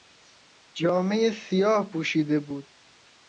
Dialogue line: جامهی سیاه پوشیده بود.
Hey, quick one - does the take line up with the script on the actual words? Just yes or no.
yes